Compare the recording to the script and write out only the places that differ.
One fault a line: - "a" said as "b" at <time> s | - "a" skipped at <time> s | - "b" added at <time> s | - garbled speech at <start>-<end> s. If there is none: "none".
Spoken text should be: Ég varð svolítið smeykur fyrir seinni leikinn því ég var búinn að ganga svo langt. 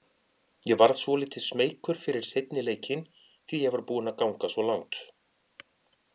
none